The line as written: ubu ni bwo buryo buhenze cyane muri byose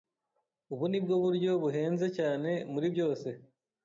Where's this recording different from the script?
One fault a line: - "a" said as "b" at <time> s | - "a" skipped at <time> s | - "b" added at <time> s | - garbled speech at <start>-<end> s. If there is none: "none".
none